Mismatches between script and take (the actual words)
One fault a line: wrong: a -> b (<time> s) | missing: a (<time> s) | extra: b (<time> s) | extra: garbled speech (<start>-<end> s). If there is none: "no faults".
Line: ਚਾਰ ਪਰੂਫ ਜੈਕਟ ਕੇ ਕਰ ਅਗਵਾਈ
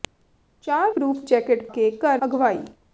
no faults